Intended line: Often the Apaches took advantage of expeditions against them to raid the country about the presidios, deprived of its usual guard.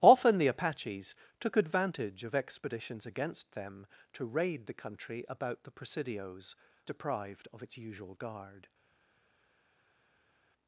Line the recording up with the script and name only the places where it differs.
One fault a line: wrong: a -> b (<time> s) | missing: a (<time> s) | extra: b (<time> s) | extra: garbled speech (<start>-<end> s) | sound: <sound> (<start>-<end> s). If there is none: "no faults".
no faults